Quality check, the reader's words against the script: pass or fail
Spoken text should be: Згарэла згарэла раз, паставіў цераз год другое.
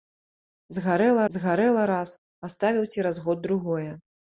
pass